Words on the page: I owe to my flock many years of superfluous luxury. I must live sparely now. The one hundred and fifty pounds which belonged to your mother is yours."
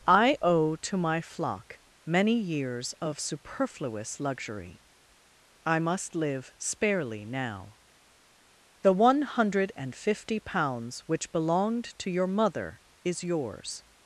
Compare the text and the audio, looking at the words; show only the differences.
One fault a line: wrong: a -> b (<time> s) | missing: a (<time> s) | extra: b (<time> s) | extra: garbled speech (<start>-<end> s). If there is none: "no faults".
no faults